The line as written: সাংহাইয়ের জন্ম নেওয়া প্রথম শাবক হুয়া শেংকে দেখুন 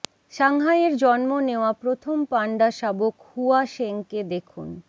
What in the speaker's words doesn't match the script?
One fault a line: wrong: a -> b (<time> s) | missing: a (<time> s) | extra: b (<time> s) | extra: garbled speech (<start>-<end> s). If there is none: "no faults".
extra: পান্ডা (2.2 s)